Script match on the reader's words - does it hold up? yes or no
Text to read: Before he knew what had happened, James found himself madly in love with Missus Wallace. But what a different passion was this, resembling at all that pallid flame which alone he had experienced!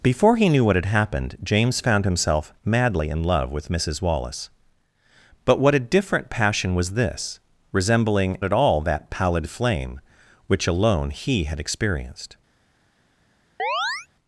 yes